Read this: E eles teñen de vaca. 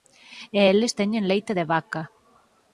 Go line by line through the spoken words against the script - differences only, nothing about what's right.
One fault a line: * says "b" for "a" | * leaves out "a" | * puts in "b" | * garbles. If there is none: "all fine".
* puts in "leite"